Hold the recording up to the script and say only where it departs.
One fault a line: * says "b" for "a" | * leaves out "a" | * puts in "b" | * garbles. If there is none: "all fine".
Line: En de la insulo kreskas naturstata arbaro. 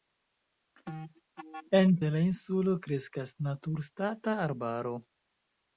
all fine